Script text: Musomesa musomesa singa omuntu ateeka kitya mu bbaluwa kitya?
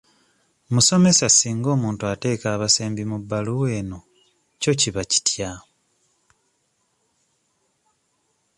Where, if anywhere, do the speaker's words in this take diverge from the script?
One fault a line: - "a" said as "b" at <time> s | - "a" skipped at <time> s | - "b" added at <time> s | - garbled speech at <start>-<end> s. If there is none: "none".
- "musomesa" skipped at 1.3 s
- "kitya" said as "abasembi" at 2.6 s
- "eno kyo kiba" added at 3.8 s